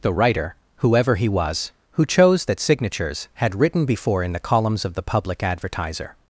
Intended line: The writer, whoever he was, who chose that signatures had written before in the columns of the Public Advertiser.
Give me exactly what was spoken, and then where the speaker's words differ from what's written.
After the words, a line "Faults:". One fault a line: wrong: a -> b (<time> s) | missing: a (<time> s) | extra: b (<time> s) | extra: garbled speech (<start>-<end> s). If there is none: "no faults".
The writer, whoever he was, who chose that signatures had written before in the columns of the Public Advertiser.
Faults:
no faults